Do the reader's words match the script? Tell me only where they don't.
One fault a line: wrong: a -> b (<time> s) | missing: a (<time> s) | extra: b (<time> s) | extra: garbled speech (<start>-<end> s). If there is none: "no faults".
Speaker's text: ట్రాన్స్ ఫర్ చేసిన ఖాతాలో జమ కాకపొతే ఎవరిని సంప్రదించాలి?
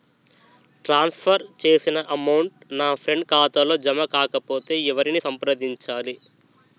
extra: అమౌంట్ నా ఫ్రెండ్ (2.1 s)